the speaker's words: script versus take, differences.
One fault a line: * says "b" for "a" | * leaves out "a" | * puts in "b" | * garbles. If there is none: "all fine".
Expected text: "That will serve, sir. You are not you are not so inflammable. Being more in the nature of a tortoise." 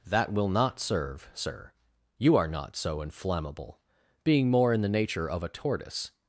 * puts in "not"
* leaves out "you are not"